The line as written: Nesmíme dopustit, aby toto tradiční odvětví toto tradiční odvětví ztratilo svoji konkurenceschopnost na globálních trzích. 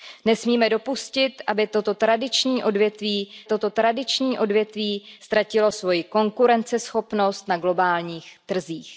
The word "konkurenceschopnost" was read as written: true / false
true